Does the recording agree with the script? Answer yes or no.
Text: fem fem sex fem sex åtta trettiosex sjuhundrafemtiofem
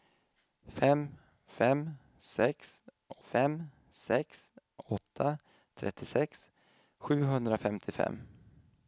yes